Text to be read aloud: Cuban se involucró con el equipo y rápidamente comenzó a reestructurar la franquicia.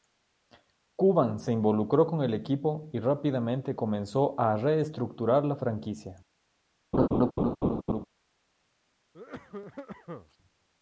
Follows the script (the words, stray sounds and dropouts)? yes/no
no